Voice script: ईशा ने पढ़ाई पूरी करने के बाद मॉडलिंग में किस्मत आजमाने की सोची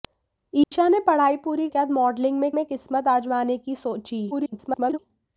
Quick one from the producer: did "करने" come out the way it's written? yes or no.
no